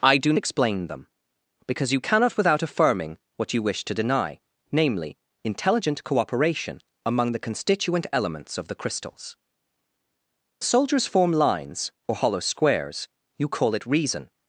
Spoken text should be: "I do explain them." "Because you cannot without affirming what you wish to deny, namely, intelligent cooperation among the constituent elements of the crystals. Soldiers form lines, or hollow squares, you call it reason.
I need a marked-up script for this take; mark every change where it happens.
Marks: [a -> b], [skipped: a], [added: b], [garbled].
"I do explain them." "Because you cannot without affirming what you wish to deny, namely, intelligent cooperation among the constituent elements of the crystals. Soldiers form lines, or hollow squares, you call it reason.